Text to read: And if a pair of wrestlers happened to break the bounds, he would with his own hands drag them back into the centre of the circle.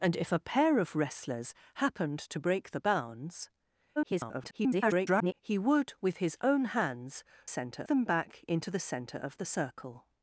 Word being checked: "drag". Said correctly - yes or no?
no